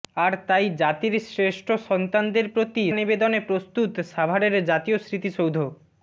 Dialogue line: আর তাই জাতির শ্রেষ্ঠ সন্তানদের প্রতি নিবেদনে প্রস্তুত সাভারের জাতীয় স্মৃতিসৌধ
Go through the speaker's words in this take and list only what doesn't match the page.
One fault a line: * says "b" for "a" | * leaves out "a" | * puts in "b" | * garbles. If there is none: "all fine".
all fine